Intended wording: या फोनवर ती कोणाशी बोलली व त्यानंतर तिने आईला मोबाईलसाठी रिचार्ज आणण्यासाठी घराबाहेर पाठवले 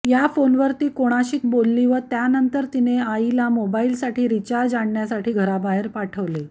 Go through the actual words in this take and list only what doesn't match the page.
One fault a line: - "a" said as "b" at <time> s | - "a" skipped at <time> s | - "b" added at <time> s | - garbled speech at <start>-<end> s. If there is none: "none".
none